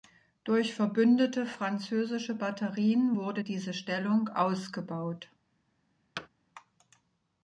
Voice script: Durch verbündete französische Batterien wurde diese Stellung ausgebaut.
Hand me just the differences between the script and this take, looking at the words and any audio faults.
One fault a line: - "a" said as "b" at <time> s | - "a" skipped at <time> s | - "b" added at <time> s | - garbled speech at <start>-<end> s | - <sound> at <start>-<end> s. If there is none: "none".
- thud at 6.2-6.3 s